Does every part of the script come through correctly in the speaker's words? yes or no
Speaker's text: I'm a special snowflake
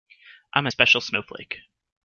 yes